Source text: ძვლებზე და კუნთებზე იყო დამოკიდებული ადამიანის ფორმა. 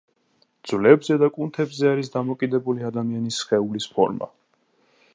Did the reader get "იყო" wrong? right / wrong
wrong